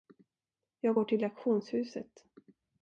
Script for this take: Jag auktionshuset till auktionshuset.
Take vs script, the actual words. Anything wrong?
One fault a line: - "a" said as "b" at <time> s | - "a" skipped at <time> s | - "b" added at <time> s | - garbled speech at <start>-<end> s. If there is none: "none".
- "auktionshuset" said as "går" at 0.9 s